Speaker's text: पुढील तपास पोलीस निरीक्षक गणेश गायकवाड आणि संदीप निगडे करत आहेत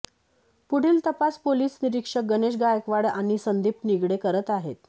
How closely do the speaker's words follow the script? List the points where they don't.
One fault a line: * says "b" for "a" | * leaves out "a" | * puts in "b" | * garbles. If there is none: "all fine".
all fine